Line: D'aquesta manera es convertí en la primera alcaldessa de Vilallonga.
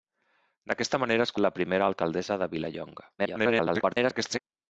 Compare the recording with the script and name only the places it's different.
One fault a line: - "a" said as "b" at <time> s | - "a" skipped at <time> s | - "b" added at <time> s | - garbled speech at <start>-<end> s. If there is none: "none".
- "convertí" skipped at 1.3 s
- garbled speech at 3.2-4.4 s